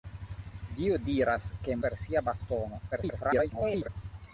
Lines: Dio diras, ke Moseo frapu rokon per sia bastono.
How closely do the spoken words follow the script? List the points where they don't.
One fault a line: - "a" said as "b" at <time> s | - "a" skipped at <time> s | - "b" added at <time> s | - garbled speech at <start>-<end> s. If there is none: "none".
- "Moseo frapu rokon" skipped at 1.8 s
- garbled speech at 2.9-3.9 s